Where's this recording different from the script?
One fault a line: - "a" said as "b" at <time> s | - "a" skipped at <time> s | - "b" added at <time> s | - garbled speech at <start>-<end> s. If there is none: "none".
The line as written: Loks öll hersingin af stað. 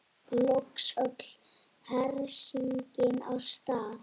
none